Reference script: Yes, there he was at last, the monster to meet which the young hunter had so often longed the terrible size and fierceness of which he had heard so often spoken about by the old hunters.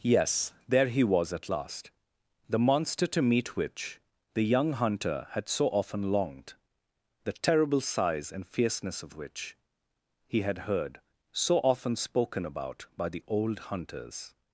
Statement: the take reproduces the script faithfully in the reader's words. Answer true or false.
true